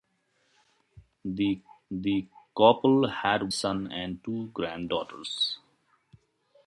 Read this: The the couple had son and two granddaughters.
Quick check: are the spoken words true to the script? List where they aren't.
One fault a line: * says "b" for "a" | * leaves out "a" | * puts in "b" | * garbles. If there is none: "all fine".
all fine